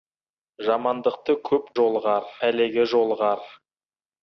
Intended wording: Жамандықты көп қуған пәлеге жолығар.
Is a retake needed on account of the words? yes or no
yes